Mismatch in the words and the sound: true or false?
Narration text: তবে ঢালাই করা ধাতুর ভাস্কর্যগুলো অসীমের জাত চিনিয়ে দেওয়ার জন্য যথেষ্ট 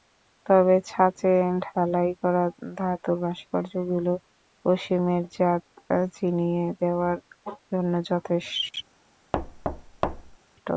true